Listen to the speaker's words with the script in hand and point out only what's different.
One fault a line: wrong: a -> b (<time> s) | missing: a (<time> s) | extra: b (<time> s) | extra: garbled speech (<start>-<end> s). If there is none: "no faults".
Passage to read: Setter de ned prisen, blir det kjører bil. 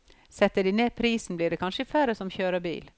extra: kanskje færre som (1.6 s)